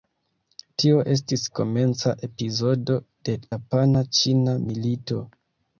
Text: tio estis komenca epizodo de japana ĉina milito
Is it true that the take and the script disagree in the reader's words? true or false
false